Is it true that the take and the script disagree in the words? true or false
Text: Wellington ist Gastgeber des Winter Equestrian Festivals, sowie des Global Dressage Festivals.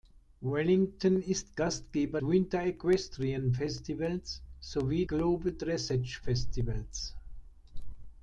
true